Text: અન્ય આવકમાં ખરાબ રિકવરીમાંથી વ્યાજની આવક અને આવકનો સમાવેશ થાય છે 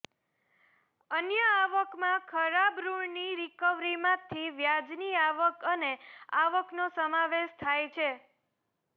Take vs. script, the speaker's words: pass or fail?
fail